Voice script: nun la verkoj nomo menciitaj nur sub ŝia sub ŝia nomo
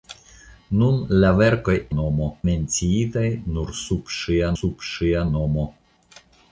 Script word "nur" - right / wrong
right